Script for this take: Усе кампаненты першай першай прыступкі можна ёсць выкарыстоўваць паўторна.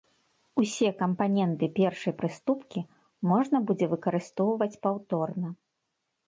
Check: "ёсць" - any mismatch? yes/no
yes